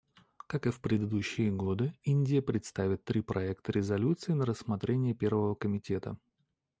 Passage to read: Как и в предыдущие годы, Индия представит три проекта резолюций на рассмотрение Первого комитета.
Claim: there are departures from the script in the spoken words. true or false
false